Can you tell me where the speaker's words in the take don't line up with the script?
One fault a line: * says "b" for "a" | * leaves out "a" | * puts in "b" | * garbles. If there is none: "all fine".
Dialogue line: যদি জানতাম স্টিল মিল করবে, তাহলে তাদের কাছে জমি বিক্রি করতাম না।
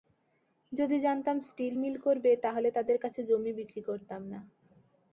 all fine